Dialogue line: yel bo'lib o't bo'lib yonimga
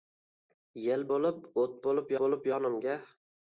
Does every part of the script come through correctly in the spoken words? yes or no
no